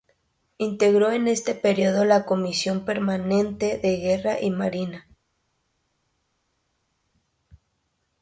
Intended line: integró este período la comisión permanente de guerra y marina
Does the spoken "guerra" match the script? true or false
true